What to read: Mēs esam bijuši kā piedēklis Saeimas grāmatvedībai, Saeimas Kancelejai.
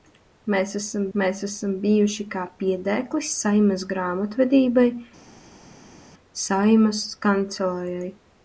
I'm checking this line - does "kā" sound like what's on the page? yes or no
yes